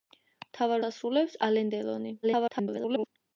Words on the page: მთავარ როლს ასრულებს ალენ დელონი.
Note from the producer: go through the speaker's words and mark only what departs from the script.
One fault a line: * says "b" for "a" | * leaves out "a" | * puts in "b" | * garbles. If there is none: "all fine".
* leaves out "როლს"
* garbles